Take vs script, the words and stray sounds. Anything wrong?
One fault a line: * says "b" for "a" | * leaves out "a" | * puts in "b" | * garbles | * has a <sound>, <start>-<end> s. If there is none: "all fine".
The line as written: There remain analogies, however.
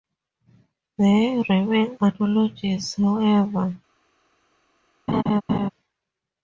* has a laugh, 5.1-5.7 s